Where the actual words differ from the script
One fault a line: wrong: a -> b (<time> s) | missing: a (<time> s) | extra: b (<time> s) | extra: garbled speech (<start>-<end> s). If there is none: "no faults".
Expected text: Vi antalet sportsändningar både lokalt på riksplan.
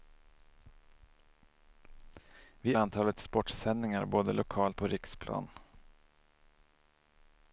no faults